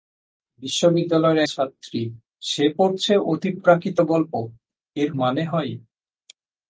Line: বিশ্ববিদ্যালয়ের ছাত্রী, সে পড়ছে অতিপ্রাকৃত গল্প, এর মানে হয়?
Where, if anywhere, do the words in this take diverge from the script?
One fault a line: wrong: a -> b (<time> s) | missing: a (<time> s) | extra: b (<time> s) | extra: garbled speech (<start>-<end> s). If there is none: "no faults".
no faults